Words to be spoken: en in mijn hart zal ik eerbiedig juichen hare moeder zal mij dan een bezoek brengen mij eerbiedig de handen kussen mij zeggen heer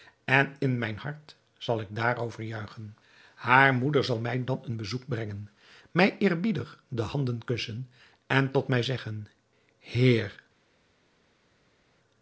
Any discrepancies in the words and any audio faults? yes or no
yes